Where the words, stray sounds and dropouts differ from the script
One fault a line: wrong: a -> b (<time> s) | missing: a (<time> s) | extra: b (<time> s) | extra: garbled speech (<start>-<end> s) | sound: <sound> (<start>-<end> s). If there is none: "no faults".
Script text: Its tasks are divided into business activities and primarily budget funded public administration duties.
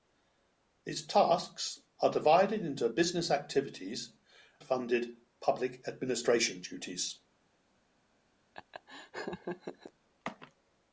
missing: and primarily budget (4.1 s)
sound: laugh (8.5-9.9 s)